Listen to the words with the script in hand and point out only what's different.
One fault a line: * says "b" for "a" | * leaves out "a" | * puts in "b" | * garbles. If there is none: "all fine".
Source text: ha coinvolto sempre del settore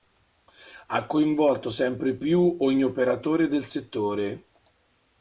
* puts in "più ogni operatore"